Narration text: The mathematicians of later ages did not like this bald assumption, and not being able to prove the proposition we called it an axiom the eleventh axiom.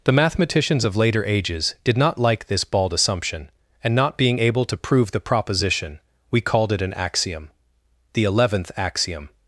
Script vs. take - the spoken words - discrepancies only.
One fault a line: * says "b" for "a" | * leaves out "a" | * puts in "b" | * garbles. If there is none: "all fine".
all fine